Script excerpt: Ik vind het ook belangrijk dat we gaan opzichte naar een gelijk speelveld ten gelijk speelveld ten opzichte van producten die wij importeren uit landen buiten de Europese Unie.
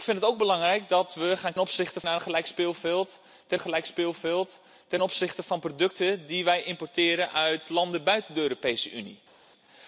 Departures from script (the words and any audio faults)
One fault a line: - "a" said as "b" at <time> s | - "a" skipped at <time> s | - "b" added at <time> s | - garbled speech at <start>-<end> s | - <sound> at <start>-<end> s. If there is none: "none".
none